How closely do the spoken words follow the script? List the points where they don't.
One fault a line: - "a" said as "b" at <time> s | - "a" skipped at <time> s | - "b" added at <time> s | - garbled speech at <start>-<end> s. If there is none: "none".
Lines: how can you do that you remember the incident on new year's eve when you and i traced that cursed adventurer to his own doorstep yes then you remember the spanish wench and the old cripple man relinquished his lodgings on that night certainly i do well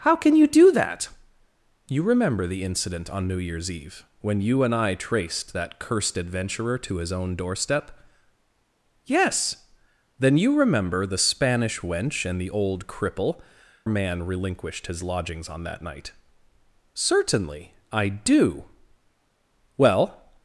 none